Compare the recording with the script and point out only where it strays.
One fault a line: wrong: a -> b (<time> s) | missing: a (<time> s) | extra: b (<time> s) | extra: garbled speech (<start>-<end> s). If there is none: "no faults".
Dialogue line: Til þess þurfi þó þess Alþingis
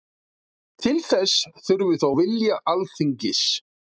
wrong: þess -> vilja (2.2 s)